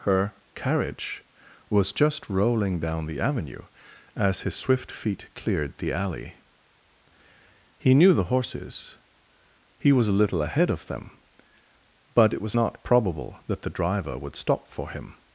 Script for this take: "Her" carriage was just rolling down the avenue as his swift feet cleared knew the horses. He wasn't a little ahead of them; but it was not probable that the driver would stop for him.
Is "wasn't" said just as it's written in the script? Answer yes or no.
no